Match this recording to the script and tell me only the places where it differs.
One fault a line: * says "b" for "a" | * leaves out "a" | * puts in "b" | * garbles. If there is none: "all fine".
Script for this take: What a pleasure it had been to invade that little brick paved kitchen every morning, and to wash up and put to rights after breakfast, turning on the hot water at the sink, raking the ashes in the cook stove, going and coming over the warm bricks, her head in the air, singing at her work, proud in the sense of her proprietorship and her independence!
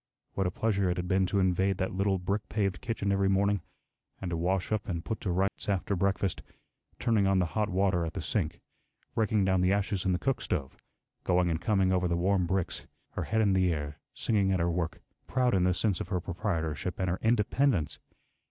* puts in "down"